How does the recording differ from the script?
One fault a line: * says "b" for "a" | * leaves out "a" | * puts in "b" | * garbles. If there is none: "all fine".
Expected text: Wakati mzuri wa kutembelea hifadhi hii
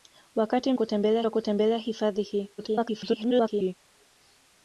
* says "kutembelea" for "mzuri"
* garbles